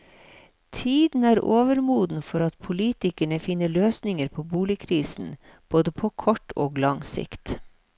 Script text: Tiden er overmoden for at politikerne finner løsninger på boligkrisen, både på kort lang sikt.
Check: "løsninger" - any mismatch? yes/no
no